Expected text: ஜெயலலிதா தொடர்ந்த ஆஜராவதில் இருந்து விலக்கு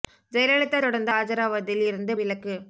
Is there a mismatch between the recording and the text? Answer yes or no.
no